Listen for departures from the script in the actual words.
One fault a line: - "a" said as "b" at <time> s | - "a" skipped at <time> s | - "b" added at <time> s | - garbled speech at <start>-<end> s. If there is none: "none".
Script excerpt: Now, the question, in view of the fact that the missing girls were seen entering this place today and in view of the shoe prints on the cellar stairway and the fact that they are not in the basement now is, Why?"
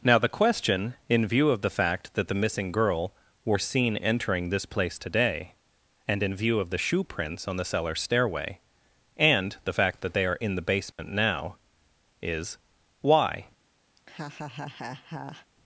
- "girls" said as "girl" at 2.7 s
- "not" skipped at 10.4 s